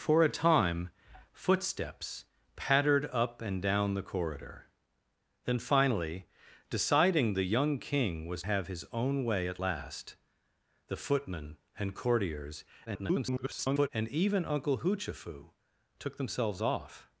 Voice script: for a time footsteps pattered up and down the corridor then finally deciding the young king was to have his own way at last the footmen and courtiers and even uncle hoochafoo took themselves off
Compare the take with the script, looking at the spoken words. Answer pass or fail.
fail